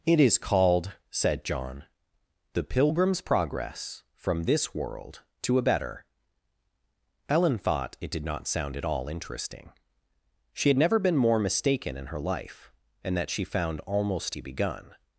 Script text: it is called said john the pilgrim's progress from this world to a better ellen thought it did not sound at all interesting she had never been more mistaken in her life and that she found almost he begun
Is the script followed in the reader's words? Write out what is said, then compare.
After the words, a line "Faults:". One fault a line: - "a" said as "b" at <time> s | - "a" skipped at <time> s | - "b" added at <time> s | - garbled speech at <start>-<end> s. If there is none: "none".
it is called said john the pilgrim's progress from this world to a better ellen thought it did not sound at all interesting she had never been more mistaken in her life and that she found almost he begun
Faults:
none